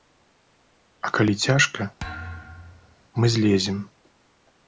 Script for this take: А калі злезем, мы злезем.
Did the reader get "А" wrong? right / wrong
right